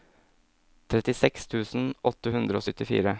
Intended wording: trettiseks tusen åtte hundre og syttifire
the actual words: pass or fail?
pass